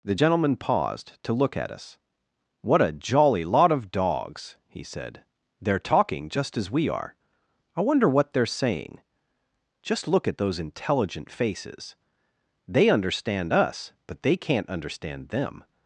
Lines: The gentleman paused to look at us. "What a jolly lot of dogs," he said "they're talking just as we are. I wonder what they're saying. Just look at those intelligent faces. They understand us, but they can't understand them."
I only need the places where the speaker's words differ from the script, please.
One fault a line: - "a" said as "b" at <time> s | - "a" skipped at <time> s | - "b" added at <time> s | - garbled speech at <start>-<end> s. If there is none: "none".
none